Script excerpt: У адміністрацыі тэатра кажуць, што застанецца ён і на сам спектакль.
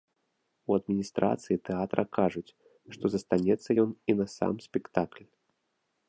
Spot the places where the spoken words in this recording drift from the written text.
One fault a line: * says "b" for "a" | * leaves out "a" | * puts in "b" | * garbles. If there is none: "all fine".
all fine